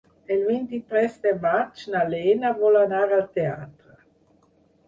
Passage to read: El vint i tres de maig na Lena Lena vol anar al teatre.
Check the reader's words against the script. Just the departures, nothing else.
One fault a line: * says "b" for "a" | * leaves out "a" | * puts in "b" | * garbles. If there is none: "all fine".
* leaves out "Lena"